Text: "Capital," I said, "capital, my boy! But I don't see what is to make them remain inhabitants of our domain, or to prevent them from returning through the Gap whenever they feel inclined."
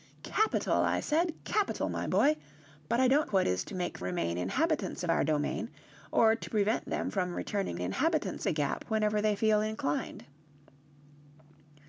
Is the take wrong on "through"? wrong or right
wrong